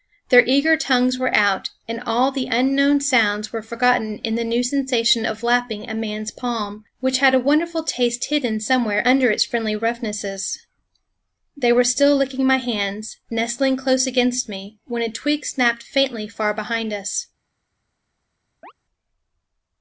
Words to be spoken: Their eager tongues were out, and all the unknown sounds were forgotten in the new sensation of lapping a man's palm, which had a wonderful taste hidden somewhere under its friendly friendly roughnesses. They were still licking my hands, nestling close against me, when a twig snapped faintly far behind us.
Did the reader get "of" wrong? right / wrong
right